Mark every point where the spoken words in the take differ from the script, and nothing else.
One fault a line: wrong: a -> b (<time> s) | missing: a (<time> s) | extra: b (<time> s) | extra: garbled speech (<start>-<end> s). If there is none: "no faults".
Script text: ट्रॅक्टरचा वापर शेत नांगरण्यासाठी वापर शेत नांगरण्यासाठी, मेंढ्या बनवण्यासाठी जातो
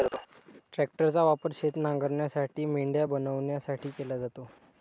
missing: वापर शेत नांगरण्यासाठी (2.6 s)
extra: केला (3.9 s)